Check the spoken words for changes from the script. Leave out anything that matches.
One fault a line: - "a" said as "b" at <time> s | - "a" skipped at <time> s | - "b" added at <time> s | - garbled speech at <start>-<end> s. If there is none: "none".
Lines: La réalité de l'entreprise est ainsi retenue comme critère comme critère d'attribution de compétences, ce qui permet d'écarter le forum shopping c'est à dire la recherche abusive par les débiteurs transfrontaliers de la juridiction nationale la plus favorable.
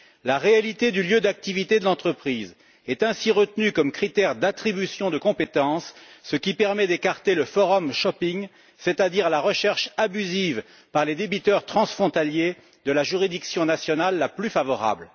- "du lieu d'activité" added at 0.9 s
- "comme critère" skipped at 4.3 s